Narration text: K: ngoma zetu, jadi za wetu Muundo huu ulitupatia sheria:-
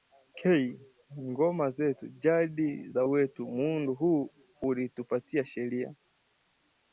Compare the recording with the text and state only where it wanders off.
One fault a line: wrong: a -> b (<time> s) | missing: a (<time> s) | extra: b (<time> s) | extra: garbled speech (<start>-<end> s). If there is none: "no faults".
no faults